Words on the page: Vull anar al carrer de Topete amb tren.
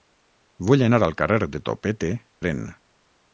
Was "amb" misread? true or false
true